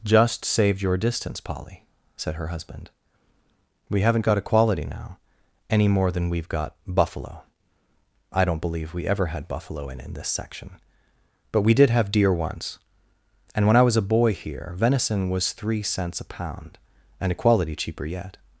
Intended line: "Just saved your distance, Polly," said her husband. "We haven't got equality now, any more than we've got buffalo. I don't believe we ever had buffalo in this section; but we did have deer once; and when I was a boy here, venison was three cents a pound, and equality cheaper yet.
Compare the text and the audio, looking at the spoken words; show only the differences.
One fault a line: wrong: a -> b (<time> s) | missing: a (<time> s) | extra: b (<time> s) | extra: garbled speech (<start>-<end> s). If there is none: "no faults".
extra: in (10.0 s)